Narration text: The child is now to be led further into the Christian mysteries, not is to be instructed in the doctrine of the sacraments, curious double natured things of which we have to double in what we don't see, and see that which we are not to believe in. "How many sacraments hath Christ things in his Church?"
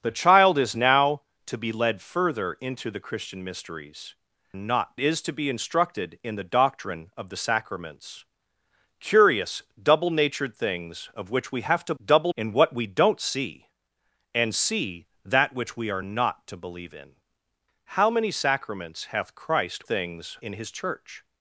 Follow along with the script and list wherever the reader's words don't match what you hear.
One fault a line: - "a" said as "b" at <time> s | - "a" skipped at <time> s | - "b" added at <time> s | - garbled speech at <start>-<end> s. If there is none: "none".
none